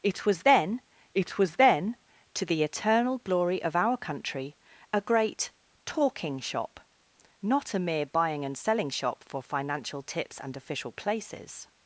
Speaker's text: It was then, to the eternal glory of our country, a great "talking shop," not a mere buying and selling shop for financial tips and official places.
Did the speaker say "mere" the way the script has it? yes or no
yes